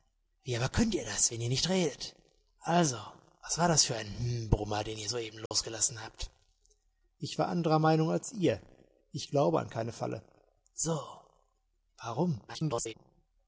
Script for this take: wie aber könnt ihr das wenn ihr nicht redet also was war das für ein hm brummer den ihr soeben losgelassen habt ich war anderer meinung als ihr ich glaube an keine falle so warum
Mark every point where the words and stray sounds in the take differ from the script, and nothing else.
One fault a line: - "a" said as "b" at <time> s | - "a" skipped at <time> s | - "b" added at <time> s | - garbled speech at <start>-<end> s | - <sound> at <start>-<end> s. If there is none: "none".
- dropout at 5.5-5.5 s
- garbled speech at 12.5-12.9 s